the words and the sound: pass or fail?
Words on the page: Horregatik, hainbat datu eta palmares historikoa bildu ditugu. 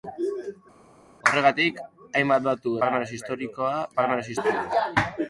fail